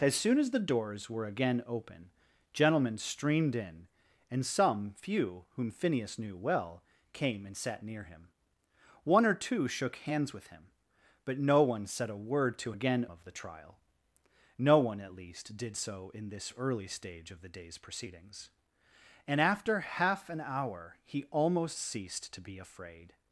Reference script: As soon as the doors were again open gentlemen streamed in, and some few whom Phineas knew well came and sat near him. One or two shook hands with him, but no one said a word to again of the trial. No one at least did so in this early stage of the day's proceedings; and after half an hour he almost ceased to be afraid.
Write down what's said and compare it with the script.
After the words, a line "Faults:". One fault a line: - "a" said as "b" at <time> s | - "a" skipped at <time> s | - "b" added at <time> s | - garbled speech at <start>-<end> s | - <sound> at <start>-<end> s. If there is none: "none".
As soon as the doors were again open gentlemen streamed in, and some few whom Phineas knew well came and sat near him. One or two shook hands with him, but no one said a word to again of the trial. No one at least did so in this early stage of the day's proceedings; and after half an hour he almost ceased to be afraid.
Faults:
none